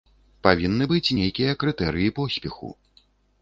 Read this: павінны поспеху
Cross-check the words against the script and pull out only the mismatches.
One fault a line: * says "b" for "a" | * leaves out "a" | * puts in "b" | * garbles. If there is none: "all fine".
* puts in "быць нейкія крытэрыі"